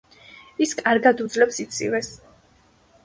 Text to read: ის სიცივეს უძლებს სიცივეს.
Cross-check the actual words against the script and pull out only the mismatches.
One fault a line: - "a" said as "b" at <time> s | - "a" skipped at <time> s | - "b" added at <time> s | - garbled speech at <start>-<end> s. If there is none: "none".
- "სიცივეს" said as "კარგად" at 0.8 s